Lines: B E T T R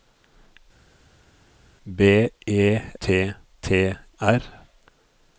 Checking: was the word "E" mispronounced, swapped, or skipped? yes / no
no